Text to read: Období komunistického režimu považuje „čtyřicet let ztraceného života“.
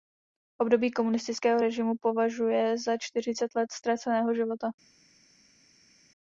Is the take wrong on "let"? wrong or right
right